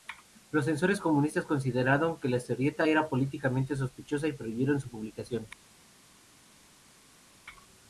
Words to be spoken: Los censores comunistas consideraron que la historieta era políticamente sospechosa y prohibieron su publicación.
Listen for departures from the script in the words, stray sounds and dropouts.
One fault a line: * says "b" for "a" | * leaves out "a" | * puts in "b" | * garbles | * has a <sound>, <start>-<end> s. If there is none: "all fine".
all fine